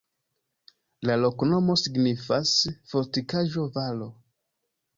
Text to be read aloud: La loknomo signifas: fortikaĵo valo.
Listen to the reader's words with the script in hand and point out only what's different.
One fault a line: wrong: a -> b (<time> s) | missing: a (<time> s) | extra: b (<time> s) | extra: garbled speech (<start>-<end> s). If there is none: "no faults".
no faults